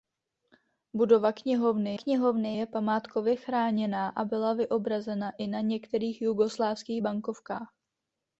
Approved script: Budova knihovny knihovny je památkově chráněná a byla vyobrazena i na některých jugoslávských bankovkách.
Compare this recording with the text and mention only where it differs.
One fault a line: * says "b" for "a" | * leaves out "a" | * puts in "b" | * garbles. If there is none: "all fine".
all fine